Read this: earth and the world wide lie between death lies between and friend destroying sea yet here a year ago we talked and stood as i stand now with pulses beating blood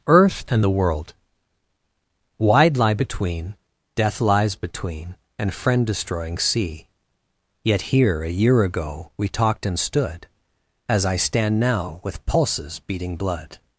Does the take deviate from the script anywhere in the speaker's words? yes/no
no